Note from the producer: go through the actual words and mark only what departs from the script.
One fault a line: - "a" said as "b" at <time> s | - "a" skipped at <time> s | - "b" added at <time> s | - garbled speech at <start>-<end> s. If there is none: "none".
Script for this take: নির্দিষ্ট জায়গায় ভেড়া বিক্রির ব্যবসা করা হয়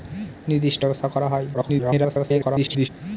- "জায়গায় ভেড়া বিক্রির" skipped at 0.8 s
- garbled speech at 1.5-2.9 s